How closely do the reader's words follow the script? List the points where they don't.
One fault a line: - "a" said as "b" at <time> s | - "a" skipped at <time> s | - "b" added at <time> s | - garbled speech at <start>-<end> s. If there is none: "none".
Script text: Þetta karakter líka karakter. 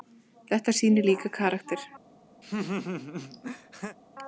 - "karakter" said as "sýnir" at 0.8 s